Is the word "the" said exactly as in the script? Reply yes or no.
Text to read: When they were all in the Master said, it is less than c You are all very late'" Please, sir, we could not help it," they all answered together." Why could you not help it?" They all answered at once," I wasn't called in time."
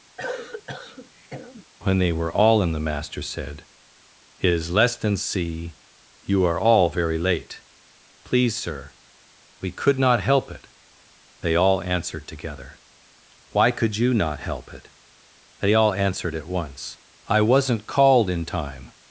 yes